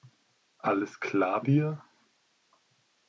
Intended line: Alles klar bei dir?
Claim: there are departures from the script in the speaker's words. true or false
true